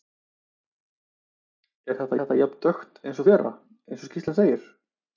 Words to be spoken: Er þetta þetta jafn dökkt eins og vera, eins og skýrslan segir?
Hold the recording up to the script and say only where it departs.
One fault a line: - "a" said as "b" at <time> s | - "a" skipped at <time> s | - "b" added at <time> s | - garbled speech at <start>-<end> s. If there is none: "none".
none